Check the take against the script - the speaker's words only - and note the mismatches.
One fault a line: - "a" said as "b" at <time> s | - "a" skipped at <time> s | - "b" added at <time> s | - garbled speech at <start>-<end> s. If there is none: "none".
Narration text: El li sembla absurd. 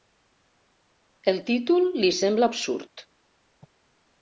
- "títol" added at 1.5 s